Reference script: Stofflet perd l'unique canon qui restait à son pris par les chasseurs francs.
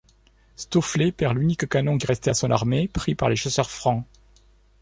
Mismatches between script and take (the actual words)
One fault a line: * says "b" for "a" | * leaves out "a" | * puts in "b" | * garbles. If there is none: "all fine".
* puts in "armée"